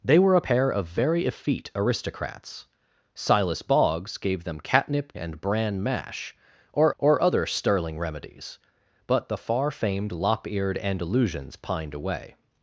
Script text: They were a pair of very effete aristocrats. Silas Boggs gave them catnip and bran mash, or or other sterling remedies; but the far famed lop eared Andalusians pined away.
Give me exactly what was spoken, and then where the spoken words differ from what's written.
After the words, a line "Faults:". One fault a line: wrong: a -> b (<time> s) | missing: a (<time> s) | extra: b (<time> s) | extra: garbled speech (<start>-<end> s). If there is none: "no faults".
They were a pair of very effete aristocrats. Silas Boggs gave them catnip and bran mash, or or other sterling remedies; but the far famed lop eared Andalusians pined away.
Faults:
no faults